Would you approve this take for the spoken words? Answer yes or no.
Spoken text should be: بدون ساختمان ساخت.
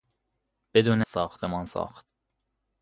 yes